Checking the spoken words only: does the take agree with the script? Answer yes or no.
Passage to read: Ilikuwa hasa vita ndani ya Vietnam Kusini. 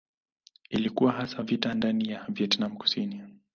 yes